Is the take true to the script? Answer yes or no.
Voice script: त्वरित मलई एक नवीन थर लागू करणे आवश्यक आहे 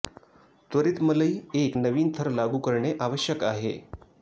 yes